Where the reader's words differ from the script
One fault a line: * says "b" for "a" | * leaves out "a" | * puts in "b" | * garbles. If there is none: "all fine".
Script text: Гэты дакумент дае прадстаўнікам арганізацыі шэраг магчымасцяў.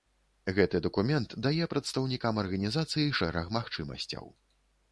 all fine